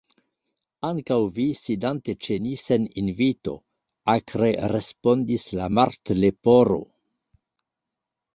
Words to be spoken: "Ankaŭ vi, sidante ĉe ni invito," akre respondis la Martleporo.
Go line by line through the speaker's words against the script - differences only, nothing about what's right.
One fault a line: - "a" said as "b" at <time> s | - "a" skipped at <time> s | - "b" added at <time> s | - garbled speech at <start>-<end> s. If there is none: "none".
- "sen" added at 2.6 s